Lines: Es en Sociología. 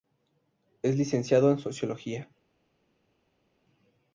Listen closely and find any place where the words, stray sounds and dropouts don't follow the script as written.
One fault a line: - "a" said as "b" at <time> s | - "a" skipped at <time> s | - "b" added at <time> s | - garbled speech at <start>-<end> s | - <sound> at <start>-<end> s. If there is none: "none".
- "licenciado" added at 1.0 s